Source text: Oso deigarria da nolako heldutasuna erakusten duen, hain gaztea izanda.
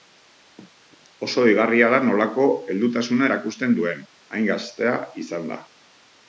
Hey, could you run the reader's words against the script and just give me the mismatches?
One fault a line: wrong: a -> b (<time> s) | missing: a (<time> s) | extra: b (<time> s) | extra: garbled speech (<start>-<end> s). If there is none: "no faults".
no faults